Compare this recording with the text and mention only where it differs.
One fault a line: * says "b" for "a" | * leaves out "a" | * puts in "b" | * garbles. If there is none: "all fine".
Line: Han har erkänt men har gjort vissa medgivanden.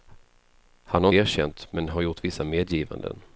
all fine